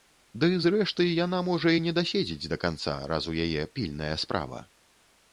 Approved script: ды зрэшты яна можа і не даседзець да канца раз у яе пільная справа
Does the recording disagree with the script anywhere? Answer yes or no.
no